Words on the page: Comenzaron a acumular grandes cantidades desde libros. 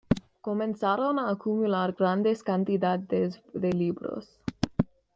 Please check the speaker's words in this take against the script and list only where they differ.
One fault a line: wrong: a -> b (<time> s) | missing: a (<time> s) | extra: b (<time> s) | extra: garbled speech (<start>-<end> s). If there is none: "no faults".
wrong: desde -> de (3.5 s)